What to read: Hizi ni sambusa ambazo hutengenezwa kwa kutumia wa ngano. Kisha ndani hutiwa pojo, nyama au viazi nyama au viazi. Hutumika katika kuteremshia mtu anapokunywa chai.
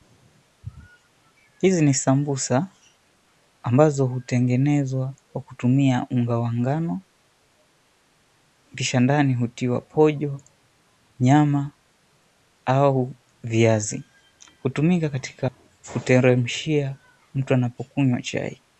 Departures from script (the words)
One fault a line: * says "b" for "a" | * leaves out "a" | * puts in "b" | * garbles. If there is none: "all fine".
* puts in "unga"
* leaves out "nyama au viazi"